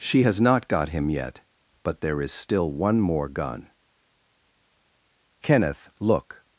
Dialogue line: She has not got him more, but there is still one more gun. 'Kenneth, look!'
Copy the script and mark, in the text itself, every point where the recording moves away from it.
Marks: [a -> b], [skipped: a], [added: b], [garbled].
She has not got him [more, -> yet] but there is still one more gun. 'Kenneth, look!'